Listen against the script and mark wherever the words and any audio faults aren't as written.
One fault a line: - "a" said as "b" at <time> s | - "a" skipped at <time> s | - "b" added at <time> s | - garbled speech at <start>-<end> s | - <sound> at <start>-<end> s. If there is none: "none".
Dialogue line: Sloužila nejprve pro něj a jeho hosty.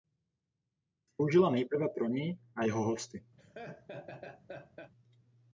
- laugh at 3.4-4.9 s